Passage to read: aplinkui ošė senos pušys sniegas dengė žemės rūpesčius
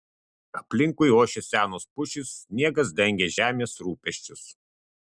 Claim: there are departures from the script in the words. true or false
false